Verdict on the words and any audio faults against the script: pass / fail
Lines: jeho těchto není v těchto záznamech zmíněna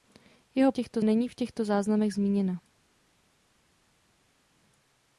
pass